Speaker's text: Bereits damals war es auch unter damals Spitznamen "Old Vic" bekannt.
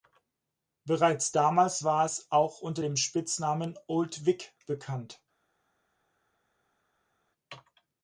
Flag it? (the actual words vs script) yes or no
yes